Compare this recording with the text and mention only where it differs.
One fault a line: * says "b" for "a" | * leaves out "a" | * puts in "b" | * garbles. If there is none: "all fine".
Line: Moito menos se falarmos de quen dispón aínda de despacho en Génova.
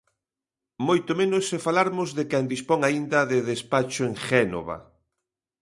all fine